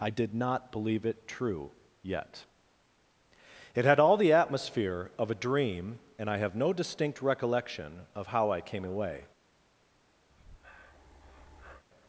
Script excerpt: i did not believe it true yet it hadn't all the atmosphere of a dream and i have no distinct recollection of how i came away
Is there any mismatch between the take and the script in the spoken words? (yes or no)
yes